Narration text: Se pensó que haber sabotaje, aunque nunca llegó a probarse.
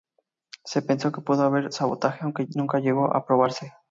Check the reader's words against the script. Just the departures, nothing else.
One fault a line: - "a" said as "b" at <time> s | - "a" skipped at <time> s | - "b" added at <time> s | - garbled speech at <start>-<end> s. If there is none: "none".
- "pudo" added at 1.2 s